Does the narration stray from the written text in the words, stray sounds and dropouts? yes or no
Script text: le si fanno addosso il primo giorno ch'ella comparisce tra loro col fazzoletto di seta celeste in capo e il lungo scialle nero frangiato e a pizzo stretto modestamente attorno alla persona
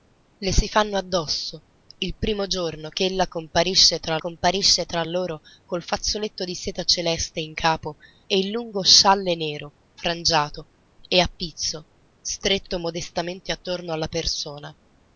yes